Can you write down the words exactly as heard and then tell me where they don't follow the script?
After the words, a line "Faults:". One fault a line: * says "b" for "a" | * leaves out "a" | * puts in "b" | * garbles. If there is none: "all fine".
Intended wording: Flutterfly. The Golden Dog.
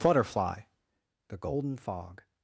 Flutterfly. The Golden Fog.
Faults:
* says "Fog" for "Dog"